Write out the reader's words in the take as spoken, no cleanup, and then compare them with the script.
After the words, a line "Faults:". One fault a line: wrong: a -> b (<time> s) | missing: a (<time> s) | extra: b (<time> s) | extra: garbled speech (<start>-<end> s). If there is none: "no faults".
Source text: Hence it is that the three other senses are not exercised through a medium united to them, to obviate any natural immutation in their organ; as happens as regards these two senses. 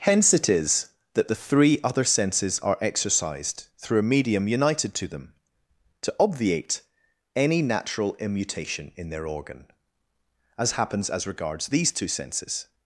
Hence it is that the three other senses are exercised through a medium united to them, to obviate any natural immutation in their organ; as happens as regards these two senses.
Faults:
missing: not (2.8 s)